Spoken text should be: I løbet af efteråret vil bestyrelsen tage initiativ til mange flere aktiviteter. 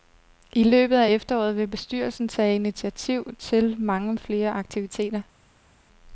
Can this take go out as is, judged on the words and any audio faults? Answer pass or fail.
pass